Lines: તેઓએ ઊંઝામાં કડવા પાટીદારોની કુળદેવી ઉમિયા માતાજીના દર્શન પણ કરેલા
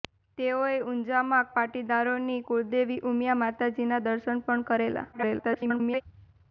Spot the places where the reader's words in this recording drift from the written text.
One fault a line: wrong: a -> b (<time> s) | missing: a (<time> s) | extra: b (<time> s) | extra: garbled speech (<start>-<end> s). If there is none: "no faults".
missing: કડવા (1.5 s)
extra: garbled speech (5.1-6.0 s)